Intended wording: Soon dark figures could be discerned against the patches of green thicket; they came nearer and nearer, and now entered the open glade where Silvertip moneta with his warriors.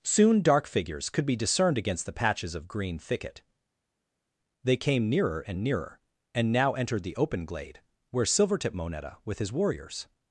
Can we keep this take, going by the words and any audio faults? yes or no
yes